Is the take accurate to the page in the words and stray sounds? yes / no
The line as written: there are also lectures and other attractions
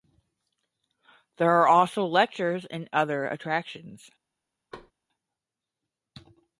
no